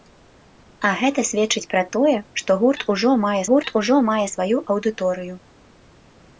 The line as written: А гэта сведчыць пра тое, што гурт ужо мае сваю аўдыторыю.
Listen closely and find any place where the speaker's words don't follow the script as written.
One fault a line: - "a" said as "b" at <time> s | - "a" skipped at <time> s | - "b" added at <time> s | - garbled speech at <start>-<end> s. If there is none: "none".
- "гурт ужо мае" added at 3.5 s